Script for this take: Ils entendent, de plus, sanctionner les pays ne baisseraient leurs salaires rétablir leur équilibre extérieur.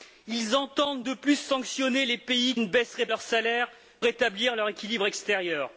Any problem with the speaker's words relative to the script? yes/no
no